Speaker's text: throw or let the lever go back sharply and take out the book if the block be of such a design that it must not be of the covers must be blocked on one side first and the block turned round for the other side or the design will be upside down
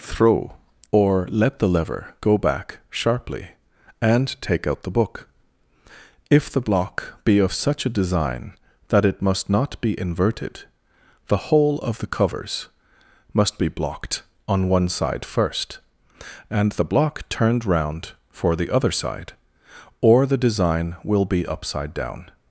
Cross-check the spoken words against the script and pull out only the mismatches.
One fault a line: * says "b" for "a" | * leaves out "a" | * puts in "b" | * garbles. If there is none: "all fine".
* puts in "inverted the whole"